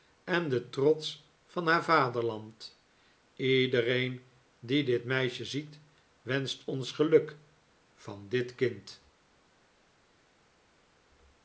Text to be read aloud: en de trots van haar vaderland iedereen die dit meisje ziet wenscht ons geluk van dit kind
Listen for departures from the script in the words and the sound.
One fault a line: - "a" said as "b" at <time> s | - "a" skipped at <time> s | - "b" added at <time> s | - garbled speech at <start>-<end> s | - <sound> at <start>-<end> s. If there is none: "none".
none